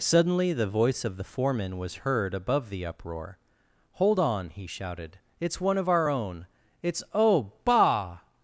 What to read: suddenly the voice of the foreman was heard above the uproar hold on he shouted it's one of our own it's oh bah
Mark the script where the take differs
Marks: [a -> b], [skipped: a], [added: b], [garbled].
suddenly the voice of the foreman was heard above the uproar hold on he shouted it's one of our own it's oh bah